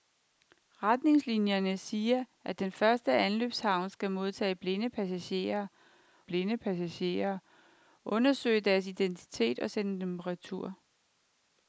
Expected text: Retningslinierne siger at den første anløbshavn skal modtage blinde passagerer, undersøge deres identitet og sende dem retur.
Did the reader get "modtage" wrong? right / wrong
right